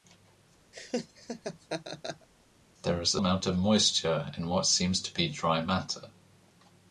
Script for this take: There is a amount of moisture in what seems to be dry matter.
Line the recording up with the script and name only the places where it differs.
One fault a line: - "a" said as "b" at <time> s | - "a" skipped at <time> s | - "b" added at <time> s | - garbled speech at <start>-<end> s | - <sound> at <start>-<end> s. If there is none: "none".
- laugh at 0.7-2.3 s